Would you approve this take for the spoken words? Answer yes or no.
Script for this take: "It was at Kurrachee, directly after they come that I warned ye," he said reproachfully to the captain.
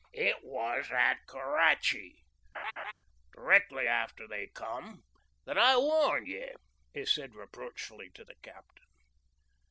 yes